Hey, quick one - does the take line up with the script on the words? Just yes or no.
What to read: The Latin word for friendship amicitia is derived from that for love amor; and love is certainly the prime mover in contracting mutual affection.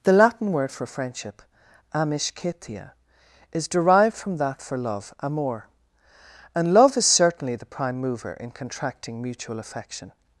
yes